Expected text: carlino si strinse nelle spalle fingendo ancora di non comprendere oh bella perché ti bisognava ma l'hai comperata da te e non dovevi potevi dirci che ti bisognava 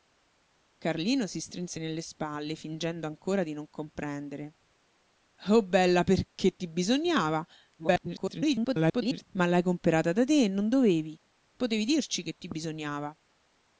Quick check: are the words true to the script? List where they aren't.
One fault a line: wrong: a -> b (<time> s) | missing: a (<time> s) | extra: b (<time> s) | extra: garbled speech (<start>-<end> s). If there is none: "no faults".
extra: garbled speech (7.8-9.2 s)